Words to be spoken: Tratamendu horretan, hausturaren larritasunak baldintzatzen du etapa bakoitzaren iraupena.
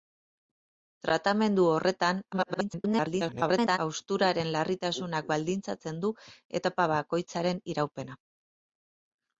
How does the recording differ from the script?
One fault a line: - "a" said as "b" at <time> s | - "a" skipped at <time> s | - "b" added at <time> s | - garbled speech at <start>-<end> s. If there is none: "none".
- garbled speech at 2.3-3.8 s